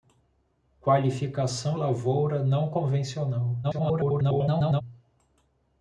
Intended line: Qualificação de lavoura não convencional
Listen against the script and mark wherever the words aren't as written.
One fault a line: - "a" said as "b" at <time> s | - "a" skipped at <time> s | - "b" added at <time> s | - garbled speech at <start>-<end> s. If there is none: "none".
- "de" skipped at 1.8 s
- garbled speech at 3.6-4.8 s